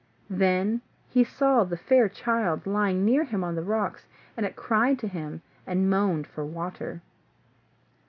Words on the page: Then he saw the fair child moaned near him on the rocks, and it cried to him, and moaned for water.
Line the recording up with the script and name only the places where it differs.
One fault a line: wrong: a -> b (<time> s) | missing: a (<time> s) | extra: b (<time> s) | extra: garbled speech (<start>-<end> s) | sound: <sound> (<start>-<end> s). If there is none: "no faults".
wrong: moaned -> lying (2.6 s)